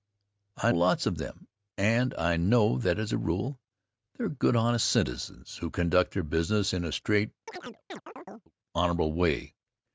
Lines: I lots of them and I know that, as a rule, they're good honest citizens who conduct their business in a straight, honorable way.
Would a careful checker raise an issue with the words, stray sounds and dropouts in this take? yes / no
yes